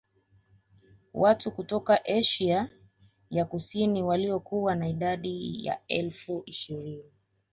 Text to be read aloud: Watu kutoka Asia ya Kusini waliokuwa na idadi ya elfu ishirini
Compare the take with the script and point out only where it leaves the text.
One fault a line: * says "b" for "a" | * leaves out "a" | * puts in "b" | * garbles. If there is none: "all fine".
all fine